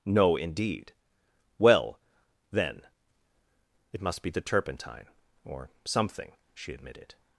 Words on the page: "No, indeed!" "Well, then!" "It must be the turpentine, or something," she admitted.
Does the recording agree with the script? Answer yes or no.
yes